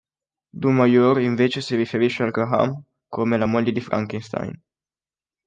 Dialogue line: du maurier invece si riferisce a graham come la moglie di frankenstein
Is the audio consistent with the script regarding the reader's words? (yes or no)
yes